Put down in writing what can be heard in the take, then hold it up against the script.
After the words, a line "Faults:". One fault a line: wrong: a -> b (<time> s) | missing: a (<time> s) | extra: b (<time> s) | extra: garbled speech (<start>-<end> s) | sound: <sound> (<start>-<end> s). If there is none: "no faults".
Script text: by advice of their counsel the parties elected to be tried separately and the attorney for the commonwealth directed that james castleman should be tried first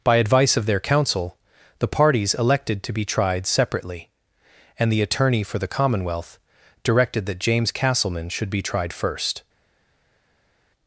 by advice of their counsel the parties elected to be tried separately and the attorney for the commonwealth directed that james castleman should be tried first
Faults:
no faults